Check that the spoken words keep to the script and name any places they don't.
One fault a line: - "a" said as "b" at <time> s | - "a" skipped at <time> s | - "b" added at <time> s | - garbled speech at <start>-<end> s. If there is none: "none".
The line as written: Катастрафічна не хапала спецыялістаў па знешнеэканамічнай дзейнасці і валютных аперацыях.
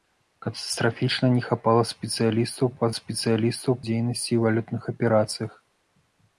- "знешнеэканамічнай" said as "спецыялістаў" at 3.0 s